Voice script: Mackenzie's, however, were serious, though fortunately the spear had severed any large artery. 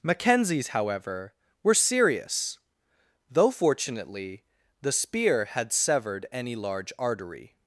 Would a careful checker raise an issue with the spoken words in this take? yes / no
no